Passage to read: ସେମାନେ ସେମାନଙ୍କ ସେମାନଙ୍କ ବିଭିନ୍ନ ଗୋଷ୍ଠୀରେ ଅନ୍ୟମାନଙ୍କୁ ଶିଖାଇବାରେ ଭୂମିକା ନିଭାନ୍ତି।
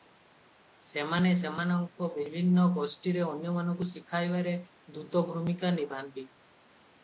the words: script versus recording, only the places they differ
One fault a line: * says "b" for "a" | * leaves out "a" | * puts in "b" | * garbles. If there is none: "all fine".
* leaves out "ସେମାନଙ୍କ"
* puts in "ଦୂତ"